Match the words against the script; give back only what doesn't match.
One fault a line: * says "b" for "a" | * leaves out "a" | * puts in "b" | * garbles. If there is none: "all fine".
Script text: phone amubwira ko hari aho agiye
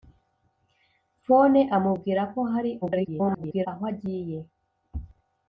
* garbles